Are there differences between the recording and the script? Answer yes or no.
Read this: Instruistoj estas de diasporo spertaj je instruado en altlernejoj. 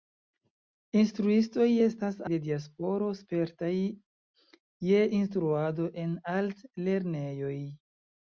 no